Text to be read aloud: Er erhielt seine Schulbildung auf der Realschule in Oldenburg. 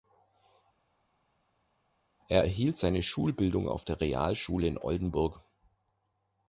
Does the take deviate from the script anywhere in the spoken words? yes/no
no